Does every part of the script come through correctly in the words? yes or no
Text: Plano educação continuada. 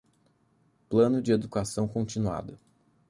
no